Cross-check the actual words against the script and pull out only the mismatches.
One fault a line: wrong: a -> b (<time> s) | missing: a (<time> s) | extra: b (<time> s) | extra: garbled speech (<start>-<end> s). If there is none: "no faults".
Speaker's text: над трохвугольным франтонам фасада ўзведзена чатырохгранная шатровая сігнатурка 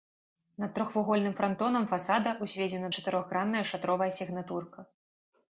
no faults